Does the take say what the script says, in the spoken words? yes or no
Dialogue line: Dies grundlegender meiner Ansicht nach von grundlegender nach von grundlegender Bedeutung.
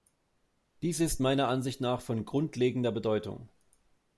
no